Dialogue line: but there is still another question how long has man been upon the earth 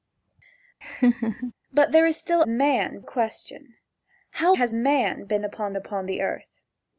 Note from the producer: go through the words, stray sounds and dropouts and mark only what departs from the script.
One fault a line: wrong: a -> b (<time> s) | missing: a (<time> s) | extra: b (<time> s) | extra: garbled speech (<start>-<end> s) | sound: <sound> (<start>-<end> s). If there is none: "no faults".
sound: laugh (0.8-1.5 s)
wrong: another -> man (2.5 s)
missing: long (4.5 s)
extra: upon (5.8 s)